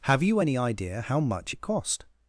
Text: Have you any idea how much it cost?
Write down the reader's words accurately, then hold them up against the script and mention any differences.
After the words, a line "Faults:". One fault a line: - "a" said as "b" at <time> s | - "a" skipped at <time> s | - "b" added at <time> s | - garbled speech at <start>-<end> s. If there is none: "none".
Have you any idea how much it cost?
Faults:
none